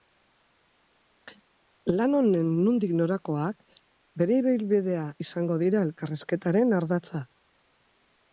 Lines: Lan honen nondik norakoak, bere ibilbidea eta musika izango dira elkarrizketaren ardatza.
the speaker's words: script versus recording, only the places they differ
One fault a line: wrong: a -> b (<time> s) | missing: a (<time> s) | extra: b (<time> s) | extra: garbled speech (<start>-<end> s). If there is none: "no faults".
missing: eta musika (5.0 s)